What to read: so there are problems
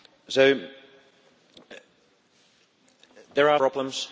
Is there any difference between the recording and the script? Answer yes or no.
no